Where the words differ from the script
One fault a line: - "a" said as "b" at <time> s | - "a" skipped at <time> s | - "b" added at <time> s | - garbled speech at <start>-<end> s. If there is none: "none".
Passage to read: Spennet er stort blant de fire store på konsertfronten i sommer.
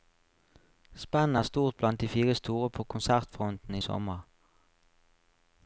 none